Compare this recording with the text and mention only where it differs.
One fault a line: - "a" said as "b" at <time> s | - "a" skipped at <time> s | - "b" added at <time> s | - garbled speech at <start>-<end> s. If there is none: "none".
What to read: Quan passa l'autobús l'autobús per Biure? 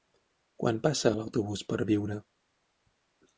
- "l'autobús" skipped at 1.6 s